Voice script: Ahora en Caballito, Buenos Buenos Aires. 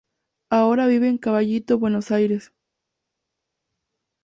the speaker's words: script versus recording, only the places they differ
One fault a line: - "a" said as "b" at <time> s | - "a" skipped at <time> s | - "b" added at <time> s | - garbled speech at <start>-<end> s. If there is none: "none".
- "vive" added at 0.9 s
- "Buenos" skipped at 2.1 s